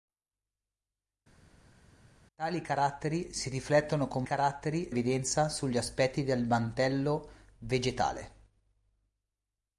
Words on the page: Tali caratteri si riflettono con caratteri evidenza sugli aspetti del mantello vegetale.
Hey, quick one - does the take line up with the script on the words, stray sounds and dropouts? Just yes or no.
yes